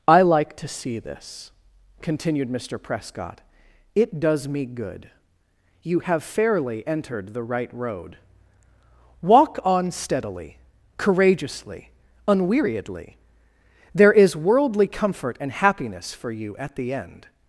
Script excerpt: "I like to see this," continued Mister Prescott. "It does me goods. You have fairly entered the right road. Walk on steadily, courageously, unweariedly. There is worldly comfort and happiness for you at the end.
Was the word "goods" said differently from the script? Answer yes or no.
yes